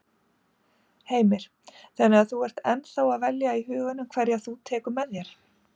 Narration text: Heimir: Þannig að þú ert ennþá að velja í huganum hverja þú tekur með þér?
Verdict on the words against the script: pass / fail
pass